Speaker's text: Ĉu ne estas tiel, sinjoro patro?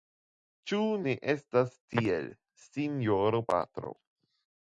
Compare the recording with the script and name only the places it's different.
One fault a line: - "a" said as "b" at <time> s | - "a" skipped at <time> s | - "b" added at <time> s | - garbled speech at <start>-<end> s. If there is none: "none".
none